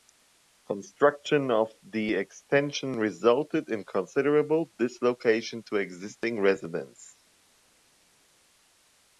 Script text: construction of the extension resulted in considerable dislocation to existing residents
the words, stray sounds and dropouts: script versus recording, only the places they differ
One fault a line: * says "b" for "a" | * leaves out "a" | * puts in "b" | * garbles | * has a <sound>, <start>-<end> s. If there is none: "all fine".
all fine